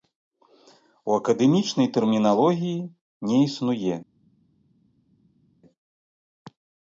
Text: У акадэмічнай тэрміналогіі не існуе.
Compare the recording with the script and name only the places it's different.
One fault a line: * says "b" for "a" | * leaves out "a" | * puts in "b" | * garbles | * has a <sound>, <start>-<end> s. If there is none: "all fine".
all fine